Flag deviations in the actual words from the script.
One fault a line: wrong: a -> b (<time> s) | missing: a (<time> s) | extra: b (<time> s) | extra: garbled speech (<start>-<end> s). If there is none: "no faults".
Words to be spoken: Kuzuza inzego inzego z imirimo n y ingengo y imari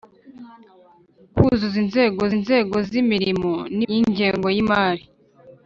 no faults